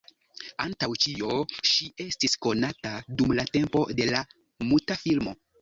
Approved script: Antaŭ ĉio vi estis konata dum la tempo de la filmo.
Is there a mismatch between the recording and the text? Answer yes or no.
yes